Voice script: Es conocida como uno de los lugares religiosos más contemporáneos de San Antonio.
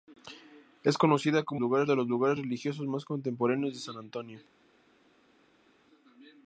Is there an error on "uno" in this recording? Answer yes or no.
yes